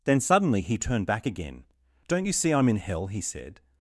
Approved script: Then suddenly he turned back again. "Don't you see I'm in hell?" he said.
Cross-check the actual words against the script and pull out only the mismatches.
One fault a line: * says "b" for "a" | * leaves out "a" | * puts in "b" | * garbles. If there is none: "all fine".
all fine